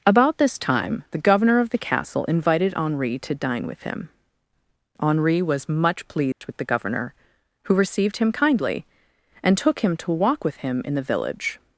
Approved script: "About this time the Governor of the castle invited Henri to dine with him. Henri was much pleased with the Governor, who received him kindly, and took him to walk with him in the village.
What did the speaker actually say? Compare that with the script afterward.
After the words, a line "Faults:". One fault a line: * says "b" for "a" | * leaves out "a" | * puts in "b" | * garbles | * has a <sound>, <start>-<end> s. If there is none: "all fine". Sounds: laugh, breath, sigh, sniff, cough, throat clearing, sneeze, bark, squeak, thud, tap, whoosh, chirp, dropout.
"About this time the Governor of the castle invited Henri to dine with him. Henri was much pleased with the Governor, who received him kindly, and took him to walk with him in the village.
Faults:
* has a dropout, 6.3-6.4 s